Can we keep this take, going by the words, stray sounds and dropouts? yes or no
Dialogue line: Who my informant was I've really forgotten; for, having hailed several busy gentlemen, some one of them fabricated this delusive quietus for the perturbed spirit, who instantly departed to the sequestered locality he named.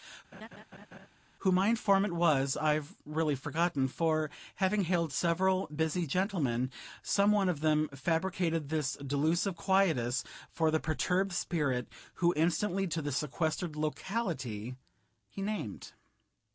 no